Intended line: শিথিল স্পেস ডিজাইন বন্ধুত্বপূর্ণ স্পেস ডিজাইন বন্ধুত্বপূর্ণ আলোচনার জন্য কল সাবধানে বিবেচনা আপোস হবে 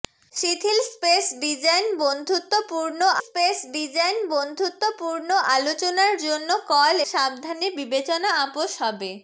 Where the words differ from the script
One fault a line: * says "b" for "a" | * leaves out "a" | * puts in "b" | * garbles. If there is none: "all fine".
all fine